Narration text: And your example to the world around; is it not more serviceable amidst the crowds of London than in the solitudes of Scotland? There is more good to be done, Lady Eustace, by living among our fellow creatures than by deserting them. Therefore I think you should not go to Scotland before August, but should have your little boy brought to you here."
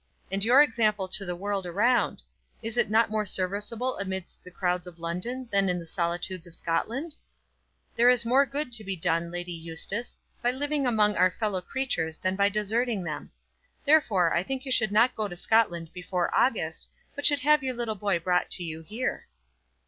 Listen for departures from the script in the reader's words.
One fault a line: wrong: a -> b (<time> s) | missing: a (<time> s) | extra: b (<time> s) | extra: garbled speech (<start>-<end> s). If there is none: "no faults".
no faults